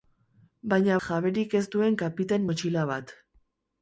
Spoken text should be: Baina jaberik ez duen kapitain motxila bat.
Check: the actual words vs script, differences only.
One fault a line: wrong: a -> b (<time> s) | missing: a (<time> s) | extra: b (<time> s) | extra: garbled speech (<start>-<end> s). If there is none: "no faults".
no faults